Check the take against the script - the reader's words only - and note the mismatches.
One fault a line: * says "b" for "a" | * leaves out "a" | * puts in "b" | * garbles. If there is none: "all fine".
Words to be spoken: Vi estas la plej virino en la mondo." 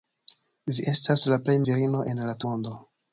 all fine